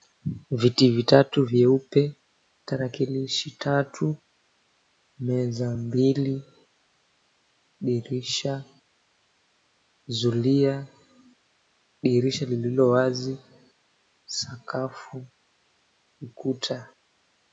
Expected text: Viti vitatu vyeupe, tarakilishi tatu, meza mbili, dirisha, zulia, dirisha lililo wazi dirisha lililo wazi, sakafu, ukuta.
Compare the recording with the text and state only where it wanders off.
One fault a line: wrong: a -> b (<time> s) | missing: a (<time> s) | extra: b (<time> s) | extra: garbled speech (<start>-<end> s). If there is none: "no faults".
missing: dirisha lililo wazi (13.4 s)